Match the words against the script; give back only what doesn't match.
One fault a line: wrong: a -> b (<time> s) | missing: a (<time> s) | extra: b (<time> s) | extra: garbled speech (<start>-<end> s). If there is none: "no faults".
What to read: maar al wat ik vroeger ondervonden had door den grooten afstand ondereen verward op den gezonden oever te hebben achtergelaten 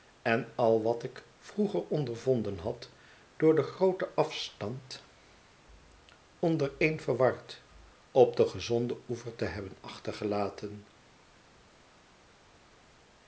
wrong: maar -> en (0.2 s)